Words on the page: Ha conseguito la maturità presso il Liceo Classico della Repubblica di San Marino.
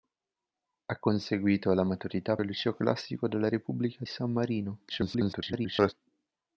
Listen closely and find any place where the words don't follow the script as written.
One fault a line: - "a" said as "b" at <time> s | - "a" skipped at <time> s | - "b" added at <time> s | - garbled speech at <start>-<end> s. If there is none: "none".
- "presso" skipped at 2.4 s
- "di" skipped at 4.0 s
- garbled speech at 4.9-5.9 s